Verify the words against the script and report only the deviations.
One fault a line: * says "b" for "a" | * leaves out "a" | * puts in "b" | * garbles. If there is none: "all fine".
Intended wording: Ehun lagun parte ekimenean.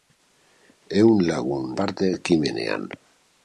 all fine